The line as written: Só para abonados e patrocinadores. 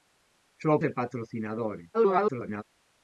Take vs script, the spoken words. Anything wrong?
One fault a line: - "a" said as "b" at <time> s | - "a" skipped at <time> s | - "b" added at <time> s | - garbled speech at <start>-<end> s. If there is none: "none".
- "para abonados" skipped at 0.7 s
- garbled speech at 1.9-2.6 s